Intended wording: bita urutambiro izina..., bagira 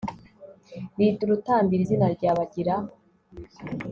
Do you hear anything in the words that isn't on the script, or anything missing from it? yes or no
yes